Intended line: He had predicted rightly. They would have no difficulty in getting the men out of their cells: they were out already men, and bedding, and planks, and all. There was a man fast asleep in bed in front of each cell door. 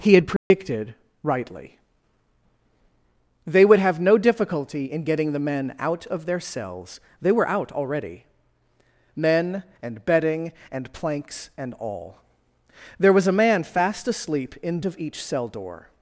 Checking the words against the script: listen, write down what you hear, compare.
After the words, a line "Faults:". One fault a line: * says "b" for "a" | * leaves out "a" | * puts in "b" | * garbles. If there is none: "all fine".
He had predicted rightly. They would have no difficulty in getting the men out of their cells: they were out already men, and bedding, and planks, and all. There was a man fast asleep in of each cell door.
Faults:
* leaves out "bed in front"